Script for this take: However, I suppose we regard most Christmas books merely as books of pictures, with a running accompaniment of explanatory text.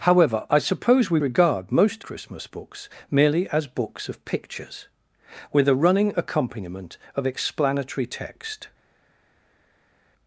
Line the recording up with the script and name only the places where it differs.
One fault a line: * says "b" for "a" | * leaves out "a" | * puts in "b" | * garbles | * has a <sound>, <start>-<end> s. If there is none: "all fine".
all fine